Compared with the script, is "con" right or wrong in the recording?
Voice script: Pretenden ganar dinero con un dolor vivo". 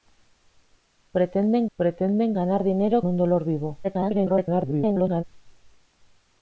wrong